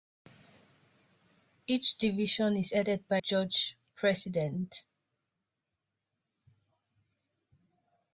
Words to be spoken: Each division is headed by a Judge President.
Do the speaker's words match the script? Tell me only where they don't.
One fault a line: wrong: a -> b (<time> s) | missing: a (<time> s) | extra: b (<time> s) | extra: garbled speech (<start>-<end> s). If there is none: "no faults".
missing: a (3.2 s)